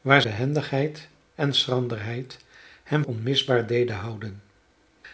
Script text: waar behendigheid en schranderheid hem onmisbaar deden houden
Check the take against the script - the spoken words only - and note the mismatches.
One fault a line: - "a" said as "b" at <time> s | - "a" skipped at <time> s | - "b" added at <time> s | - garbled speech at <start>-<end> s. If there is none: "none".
none